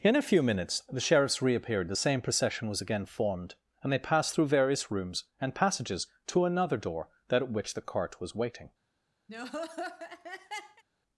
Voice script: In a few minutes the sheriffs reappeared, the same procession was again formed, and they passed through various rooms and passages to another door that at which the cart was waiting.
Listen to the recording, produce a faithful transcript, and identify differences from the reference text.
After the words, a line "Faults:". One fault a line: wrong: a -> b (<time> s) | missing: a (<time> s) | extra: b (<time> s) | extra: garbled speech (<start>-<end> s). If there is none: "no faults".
In a few minutes the sheriffs reappeared, the same procession was again formed, and they passed through various rooms and passages to another door that at which the cart was waiting.
Faults:
no faults